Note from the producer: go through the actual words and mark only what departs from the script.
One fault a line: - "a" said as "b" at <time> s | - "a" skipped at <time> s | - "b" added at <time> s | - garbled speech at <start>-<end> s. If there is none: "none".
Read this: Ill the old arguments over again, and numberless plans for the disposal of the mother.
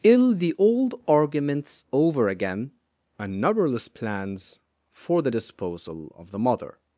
none